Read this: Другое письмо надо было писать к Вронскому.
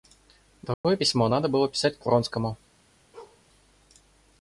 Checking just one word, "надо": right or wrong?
right